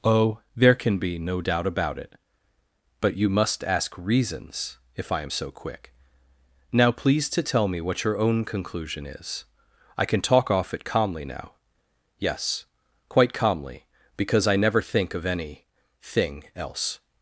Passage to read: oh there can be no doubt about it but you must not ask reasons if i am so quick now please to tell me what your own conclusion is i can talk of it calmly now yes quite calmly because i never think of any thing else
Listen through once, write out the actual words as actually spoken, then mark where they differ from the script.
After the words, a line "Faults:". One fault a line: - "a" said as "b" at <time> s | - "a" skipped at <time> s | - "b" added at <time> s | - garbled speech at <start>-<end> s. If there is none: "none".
oh there can be no doubt about it but you must ask reasons if i am so quick now please to tell me what your own conclusion is i can talk off it calmly now yes quite calmly because i never think of any thing else
Faults:
- "not" skipped at 3.6 s
- "of" said as "off" at 10.5 s